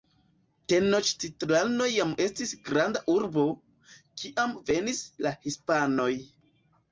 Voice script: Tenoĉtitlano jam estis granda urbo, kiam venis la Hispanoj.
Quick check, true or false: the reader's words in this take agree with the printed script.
true